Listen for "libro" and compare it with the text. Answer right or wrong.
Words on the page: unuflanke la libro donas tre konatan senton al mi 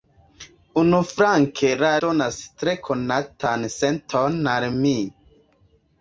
wrong